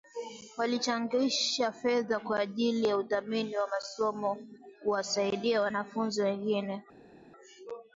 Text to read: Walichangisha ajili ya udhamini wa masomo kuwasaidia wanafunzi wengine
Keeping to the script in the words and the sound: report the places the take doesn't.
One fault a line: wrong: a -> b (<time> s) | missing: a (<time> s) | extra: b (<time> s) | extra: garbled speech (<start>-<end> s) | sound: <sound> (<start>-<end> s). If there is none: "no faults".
extra: fedha kwa (1.7 s)